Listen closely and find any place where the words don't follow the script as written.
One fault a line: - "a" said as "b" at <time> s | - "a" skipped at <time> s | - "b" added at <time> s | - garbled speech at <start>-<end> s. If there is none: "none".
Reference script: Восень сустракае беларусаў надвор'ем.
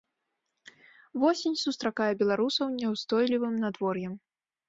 - "няўстойлівым" added at 2.8 s